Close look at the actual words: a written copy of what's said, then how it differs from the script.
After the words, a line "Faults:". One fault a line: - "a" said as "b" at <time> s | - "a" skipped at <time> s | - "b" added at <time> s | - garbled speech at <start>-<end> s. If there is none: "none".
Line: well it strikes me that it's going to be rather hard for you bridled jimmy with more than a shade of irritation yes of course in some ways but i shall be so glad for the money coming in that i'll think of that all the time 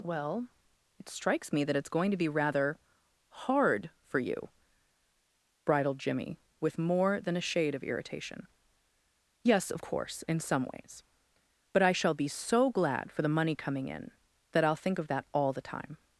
well it strikes me that it's going to be rather hard for you bridled jimmy with more than a shade of irritation yes of course in some ways but i shall be so glad for the money coming in that i'll think of that all the time
Faults:
none